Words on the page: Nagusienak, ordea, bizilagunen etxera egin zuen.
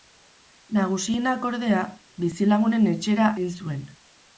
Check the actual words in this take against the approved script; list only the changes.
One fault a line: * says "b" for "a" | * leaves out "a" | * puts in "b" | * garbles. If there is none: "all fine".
all fine